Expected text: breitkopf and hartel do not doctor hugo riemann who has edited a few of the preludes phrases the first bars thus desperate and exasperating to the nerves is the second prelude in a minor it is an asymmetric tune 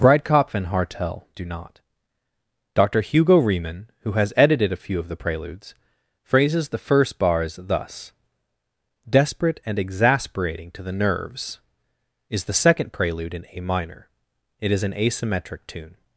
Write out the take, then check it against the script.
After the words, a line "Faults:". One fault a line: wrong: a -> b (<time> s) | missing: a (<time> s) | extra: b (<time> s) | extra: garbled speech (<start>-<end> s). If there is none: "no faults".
breitkopf and hartel do not doctor hugo riemann who has edited a few of the preludes phrases the first bars thus desperate and exasperating to the nerves is the second prelude in a minor it is an asymmetric tune
Faults:
no faults